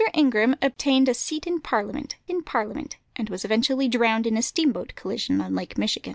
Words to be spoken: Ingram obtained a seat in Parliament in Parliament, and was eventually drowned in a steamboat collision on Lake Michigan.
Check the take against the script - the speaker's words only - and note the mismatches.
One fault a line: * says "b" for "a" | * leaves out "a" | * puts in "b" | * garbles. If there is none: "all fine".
all fine